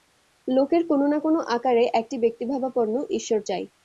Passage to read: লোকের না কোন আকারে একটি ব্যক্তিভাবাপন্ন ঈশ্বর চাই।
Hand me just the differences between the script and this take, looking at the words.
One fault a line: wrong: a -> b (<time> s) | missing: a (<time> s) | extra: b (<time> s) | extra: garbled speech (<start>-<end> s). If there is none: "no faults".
extra: কোন (0.9 s)